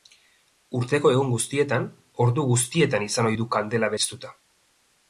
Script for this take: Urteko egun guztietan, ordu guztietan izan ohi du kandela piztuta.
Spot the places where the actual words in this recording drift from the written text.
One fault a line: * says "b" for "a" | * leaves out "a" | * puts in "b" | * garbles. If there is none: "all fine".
all fine